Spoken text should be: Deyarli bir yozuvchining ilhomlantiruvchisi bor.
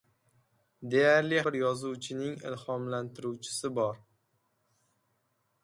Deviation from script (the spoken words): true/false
false